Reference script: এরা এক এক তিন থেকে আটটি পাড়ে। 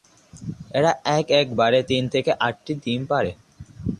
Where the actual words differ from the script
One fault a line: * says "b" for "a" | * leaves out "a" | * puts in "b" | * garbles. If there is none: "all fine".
* puts in "বারে"
* puts in "ডিম"